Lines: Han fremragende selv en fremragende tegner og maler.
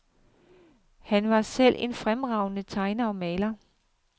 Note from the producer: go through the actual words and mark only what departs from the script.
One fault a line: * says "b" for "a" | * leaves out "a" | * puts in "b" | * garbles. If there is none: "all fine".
* says "var" for "fremragende"